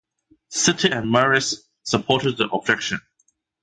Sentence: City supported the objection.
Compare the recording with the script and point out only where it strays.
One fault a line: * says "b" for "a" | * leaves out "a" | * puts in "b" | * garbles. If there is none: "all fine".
* puts in "and Marist"